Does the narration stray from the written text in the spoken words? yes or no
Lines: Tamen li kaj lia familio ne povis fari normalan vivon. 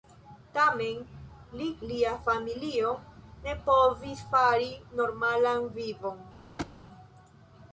yes